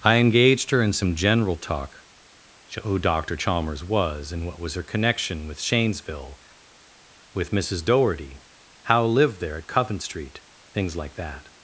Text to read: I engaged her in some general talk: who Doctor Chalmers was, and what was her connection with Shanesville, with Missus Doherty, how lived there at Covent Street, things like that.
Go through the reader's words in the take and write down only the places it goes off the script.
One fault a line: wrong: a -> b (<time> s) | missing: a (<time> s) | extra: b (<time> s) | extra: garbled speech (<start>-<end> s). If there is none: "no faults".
no faults